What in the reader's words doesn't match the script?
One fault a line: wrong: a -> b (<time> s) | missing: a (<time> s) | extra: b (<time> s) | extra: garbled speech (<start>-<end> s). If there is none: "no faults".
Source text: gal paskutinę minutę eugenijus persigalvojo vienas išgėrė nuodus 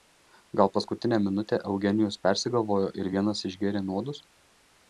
extra: ir (3.0 s)